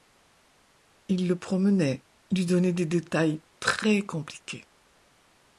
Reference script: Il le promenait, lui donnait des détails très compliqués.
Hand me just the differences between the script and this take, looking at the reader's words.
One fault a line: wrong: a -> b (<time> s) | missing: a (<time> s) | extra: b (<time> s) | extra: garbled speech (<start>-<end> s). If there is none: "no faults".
no faults